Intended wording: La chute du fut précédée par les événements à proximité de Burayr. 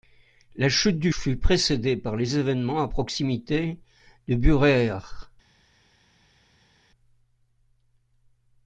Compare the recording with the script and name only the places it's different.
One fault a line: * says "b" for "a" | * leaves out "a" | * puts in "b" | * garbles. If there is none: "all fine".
all fine